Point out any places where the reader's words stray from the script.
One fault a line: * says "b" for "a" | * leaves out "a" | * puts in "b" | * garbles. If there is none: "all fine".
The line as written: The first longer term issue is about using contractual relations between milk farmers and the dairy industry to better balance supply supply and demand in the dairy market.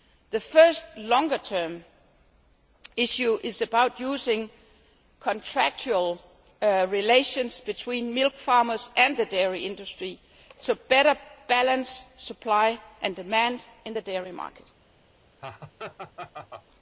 * leaves out "supply"